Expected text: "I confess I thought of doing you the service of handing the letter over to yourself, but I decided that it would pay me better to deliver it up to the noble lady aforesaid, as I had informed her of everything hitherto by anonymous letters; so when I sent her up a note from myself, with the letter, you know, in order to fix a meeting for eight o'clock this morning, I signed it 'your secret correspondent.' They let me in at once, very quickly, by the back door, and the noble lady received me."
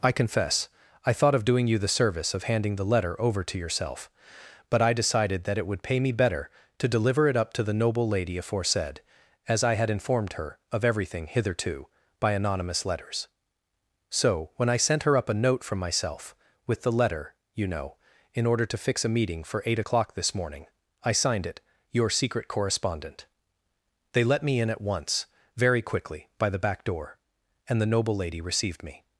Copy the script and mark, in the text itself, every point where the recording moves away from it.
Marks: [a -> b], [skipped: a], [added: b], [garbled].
"I confess I thought of doing you the service of handing the letter over to yourself, but I decided that it would pay me better to deliver it up to the noble lady aforesaid, as I had informed her of everything hitherto by anonymous letters; so when I sent her up a note from myself, with the letter, you know, in order to fix a meeting for eight o'clock this morning, I signed it 'your secret correspondent.' They let me in at once, very quickly, by the back door, and the noble lady received me."